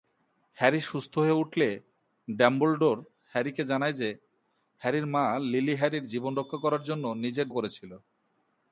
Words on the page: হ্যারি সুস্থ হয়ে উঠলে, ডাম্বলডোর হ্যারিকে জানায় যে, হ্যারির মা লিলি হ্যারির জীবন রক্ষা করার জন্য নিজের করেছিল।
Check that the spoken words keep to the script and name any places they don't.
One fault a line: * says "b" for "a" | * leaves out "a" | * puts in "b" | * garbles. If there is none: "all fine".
all fine